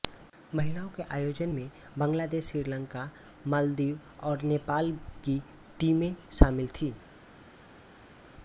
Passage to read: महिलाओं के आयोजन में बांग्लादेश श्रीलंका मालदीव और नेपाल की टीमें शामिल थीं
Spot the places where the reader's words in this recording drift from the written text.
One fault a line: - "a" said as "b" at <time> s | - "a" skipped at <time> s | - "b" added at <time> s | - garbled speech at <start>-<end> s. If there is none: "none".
none